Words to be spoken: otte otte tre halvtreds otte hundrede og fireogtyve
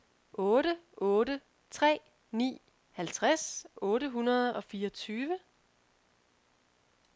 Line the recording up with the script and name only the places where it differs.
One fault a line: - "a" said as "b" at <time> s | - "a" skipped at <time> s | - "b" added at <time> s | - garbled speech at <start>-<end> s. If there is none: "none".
- "ni" added at 2.3 s